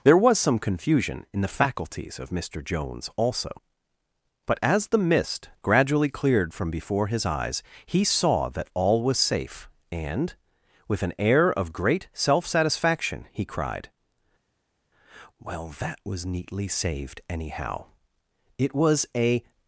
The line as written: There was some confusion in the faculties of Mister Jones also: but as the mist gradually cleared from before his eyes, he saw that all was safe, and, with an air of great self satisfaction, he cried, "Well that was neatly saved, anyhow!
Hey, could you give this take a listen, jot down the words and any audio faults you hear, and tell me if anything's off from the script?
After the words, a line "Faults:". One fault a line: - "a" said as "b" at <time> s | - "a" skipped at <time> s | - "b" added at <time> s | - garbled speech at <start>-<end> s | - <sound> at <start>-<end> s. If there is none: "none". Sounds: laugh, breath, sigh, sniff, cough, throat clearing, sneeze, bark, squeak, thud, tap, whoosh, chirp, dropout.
There was some confusion in the faculties of Mister Jones also: but as the mist gradually cleared from before his eyes, he saw that all was safe, and, with an air of great self satisfaction, he cried, "Well that was neatly saved, anyhow! it was a
Faults:
- "it was a" added at 18.6 s